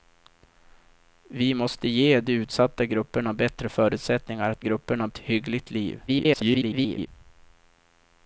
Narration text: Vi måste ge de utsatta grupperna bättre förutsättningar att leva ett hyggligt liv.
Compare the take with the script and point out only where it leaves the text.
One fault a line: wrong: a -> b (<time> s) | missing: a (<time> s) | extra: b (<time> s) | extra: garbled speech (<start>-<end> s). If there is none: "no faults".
wrong: leva -> grupperna (4.6 s)
extra: garbled speech (6.1-7.1 s)